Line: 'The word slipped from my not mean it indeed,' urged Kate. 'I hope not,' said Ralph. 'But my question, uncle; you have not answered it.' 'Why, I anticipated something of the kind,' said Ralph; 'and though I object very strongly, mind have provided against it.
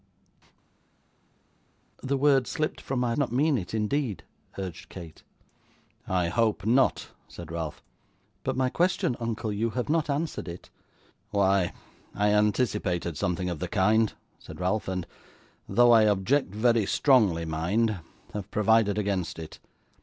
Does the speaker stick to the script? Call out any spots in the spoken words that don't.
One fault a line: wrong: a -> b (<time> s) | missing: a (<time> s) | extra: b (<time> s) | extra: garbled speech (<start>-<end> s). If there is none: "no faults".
no faults